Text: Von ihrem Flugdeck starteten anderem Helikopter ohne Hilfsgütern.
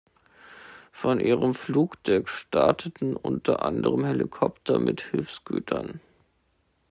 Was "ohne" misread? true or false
true